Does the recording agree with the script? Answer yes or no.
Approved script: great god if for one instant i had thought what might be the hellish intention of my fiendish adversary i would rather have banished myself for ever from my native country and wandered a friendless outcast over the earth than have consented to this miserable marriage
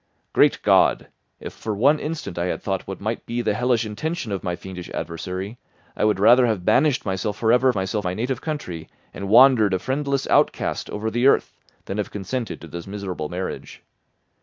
no